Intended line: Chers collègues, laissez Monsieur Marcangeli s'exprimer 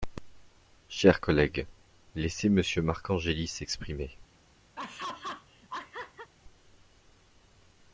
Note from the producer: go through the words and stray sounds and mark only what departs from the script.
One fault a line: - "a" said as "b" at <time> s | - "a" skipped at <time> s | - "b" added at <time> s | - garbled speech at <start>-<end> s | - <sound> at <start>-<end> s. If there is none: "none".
- laugh at 4.8-6.3 s